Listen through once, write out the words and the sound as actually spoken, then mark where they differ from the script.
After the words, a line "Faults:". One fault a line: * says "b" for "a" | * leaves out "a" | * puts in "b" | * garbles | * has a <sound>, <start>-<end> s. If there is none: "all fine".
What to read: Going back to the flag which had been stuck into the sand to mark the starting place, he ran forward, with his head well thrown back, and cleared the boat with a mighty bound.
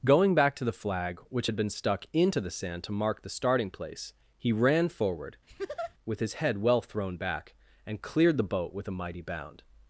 Going back to the flag which had been stuck into the sand to mark the starting place, he ran forward, with his head well thrown back, and cleared the boat with a mighty bound.
Faults:
* has a laugh, 5.5-5.9 s